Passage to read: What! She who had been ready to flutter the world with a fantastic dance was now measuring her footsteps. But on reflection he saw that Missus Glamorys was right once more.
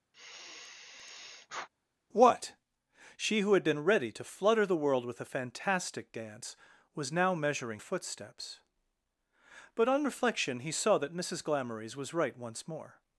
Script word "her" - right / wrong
wrong